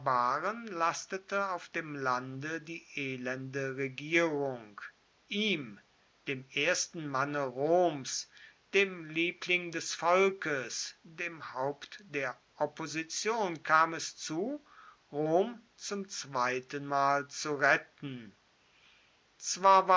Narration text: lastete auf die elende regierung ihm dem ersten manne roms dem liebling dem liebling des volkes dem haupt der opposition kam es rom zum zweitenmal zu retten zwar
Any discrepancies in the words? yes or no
yes